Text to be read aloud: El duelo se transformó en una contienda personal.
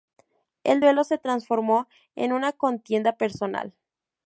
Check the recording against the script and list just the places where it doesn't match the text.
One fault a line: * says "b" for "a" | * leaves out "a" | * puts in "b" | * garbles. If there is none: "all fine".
all fine